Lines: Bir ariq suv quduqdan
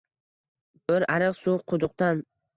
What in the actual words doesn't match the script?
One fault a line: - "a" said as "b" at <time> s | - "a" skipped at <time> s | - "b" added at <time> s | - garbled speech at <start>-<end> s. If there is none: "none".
none